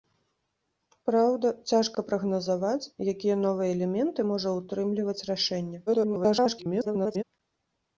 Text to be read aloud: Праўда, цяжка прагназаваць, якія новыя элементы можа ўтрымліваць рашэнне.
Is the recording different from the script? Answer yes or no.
yes